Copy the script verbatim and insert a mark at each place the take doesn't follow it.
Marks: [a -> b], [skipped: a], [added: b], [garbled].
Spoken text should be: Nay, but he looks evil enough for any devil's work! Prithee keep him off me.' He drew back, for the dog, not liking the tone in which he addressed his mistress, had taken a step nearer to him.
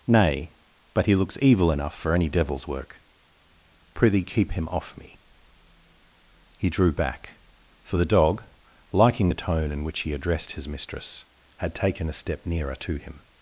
Nay, but he looks evil enough for any devil's work! Prithee keep him off me.' He drew back, for the dog, [skipped: not] liking the tone in which he addressed his mistress, had taken a step nearer to him.